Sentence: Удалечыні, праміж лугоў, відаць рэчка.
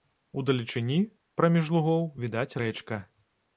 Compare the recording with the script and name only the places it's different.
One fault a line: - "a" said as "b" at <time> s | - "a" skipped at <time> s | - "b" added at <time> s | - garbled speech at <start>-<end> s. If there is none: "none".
none